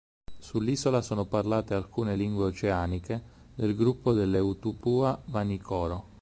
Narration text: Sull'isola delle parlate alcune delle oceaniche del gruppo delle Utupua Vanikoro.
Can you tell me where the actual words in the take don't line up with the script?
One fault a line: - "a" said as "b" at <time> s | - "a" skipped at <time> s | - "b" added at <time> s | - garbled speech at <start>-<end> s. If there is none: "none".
- "delle" said as "sono" at 1.0 s
- "delle" said as "lingue" at 2.1 s